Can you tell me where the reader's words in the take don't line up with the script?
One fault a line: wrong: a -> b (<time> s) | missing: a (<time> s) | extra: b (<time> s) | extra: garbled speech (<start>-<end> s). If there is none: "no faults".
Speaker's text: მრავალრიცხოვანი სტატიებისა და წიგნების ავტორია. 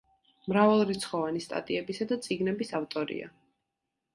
no faults